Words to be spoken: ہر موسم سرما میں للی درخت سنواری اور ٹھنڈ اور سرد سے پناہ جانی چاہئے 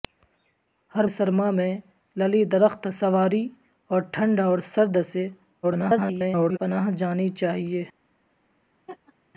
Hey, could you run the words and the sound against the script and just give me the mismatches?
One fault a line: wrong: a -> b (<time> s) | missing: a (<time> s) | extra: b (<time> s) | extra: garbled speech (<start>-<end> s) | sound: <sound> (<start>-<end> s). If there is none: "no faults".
missing: موسم (1.1 s)
extra: garbled speech (5.6-6.6 s)
sound: laugh (8.9-9.1 s)